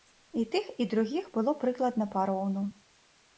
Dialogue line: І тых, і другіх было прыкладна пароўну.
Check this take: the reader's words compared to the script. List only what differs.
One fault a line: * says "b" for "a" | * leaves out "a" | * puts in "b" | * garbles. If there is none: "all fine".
all fine